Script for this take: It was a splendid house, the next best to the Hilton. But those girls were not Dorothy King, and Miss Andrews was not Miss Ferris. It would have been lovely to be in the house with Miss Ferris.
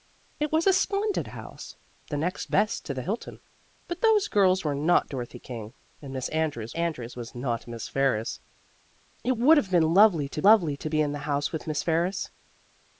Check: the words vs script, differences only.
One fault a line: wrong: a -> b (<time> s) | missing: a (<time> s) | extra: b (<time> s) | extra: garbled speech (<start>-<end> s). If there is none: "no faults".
extra: Andrews (6.7 s)
extra: lovely to (10.4 s)